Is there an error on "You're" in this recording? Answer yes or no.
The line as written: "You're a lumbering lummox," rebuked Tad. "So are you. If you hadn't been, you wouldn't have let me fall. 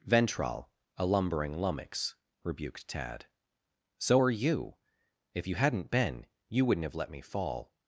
yes